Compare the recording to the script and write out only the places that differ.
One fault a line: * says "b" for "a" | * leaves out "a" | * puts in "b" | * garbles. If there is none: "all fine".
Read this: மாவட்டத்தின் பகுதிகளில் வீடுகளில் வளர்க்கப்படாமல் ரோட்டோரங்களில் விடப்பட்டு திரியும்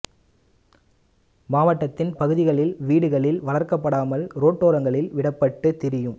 all fine